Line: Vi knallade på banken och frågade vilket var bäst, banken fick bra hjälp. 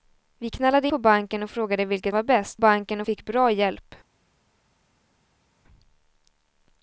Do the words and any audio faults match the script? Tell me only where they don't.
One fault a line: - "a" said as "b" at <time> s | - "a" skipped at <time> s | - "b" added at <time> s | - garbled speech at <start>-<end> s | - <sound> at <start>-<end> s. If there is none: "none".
none